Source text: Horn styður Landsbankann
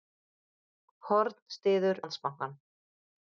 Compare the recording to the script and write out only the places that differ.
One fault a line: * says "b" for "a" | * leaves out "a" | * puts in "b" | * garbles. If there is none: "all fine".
all fine